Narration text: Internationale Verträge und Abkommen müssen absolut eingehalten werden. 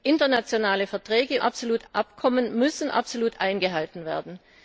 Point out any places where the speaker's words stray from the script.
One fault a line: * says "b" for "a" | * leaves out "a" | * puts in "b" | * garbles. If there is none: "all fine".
* says "absolut" for "und"